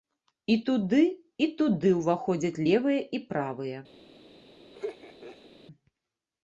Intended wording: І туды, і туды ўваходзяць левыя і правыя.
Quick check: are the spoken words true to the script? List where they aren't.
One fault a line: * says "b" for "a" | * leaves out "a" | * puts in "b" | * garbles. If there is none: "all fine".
all fine